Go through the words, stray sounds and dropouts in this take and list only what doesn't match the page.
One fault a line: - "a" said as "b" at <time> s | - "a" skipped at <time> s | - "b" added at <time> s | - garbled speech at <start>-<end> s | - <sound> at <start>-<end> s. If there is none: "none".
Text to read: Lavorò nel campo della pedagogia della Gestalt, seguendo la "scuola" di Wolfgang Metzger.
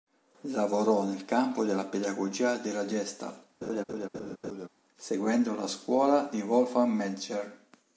- laugh at 3.6-4.7 s